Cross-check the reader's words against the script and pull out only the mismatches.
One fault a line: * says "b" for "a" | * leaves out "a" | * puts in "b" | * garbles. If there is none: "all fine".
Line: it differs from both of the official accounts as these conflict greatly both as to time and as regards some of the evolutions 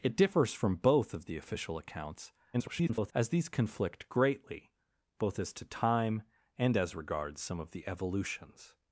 * garbles